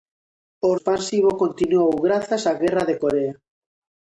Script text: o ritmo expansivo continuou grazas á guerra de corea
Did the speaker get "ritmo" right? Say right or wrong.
wrong